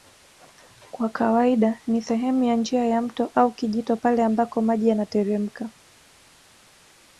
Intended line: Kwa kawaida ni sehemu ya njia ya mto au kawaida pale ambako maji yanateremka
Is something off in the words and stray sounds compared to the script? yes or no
yes